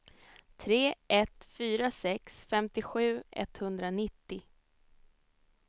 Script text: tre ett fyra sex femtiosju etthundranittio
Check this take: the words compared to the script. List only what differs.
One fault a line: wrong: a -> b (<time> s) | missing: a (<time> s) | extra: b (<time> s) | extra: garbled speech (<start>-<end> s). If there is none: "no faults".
no faults